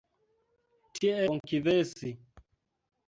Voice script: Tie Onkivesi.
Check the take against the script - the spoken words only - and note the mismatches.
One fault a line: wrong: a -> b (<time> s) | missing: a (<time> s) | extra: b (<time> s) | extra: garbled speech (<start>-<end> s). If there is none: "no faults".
no faults